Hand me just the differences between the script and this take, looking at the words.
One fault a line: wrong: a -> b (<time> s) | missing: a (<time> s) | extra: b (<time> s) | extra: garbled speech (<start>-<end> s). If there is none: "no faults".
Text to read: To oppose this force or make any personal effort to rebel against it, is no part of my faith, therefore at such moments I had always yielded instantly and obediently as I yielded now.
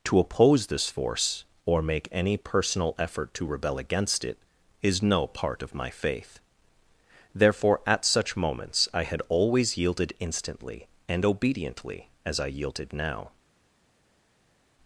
no faults